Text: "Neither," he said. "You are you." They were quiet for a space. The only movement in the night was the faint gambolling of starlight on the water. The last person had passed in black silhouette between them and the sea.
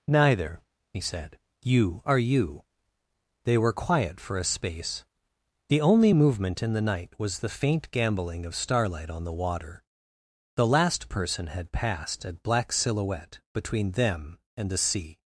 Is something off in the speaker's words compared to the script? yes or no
yes